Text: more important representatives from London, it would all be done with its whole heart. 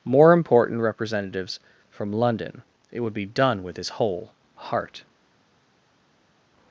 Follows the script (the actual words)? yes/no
no